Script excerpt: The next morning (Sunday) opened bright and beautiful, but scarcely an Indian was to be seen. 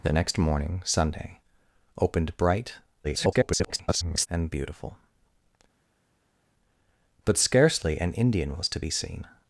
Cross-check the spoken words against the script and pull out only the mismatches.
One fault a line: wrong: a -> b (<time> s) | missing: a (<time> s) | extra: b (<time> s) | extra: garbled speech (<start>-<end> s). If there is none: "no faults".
extra: garbled speech (3.0-4.3 s)